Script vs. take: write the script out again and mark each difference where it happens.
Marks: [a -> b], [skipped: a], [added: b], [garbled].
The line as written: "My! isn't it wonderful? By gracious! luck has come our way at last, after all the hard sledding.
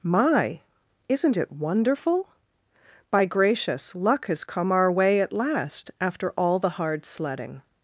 "My! isn't it wonderful? By gracious! luck has come our way at last, after all the hard sledding.